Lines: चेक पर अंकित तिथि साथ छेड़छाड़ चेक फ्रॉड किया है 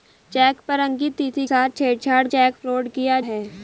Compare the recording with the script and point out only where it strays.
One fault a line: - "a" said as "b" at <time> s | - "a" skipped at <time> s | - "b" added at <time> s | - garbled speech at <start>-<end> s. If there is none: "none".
none